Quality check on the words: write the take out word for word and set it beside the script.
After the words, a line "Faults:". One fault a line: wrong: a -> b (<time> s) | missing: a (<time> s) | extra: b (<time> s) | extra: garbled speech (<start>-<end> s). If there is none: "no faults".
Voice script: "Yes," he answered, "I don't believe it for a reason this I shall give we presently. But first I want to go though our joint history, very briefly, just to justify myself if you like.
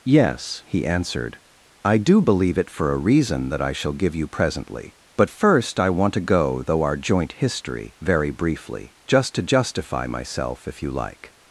"Yes," he answered, "I do believe it for a reason that I shall give you presently. But first I want to go though our joint history, very briefly, just to justify myself if you like.
Faults:
wrong: don't -> do (2.0 s)
wrong: this -> that (3.5 s)
wrong: we -> you (4.1 s)